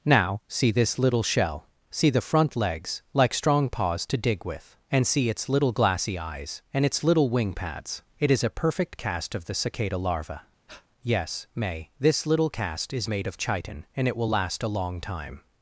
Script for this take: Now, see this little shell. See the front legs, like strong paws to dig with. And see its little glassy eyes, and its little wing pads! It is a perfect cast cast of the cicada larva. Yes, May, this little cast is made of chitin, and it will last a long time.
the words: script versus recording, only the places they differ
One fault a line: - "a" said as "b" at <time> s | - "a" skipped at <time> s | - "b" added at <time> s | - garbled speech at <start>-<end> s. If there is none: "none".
- "cast" skipped at 9.3 s